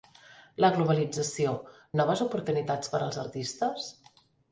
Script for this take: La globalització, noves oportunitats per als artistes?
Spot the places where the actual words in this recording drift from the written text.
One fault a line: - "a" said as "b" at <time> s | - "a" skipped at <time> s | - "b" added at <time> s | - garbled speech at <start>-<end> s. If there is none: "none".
none